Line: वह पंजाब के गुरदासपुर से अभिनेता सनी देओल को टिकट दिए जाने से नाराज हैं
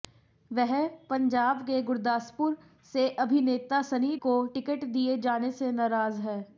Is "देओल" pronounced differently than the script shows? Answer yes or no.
yes